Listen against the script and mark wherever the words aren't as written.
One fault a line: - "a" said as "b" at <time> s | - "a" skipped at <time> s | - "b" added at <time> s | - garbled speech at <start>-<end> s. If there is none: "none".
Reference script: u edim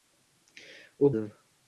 none